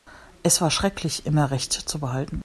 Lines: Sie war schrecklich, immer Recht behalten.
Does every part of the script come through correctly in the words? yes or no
no